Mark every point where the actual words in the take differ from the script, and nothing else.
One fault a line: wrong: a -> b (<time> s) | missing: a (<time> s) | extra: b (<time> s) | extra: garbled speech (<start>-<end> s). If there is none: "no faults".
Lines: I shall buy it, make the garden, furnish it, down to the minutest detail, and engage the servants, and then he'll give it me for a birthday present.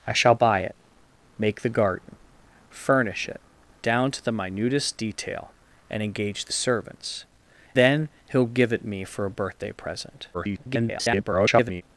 missing: and (7.2 s)
extra: garbled speech (10.3-11.8 s)